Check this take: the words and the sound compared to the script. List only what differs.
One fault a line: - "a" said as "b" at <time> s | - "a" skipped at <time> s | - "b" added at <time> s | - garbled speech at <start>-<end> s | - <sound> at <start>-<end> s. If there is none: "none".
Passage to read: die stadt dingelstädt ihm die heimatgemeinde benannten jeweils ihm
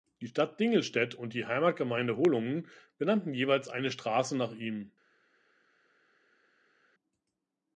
- "ihm" said as "und" at 1.1 s
- "holungen" added at 2.2 s
- "eine straße nach" added at 3.7 s